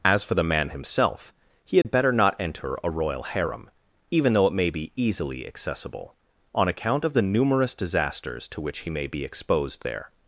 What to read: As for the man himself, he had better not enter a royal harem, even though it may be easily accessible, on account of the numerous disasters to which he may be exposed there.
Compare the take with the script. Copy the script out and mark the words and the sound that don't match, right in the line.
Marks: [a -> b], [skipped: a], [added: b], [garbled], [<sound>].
As for the man himself, he had [dropout] better not enter a royal harem, even though it may be easily accessible, on account of the numerous disasters to which he may be exposed there.